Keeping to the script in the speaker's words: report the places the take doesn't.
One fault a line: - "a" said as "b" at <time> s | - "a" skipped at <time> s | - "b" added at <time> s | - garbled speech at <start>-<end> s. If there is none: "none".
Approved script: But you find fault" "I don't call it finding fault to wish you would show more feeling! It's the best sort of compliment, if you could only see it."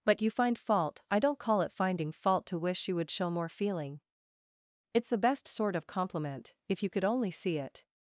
none